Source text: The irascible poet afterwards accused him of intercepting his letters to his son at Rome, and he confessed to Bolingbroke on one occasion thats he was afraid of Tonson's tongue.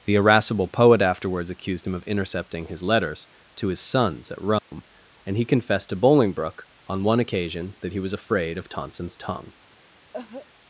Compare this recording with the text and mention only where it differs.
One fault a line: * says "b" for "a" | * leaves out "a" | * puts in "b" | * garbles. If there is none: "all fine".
* says "sons" for "son"
* says "that" for "thats"